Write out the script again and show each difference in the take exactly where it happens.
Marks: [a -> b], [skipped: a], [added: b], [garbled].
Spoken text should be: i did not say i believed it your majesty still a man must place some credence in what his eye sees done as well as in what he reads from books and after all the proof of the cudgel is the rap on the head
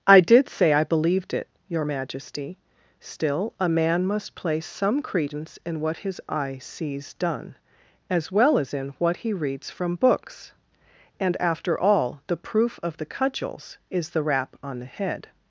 i did [skipped: not] say i believed it your majesty still a man must place some credence in what his eye sees done as well as in what he reads from books and after all the proof of the [cudgel -> cudgels] is the rap on the head